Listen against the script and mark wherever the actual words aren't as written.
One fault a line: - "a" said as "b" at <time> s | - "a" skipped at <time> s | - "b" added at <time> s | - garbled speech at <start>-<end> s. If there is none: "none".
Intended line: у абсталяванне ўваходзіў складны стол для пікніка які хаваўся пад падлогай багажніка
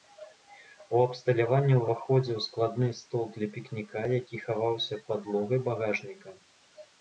- "пад" skipped at 5.0 s